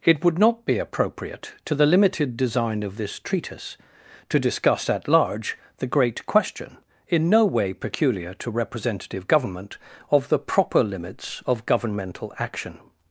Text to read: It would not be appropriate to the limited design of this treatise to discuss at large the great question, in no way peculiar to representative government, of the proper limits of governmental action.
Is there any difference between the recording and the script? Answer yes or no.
no